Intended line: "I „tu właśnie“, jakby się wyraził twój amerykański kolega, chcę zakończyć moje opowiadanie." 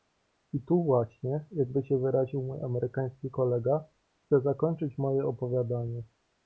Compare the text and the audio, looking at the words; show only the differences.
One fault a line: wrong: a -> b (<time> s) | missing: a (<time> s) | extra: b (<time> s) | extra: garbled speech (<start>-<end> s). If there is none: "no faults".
wrong: twój -> mój (2.4 s)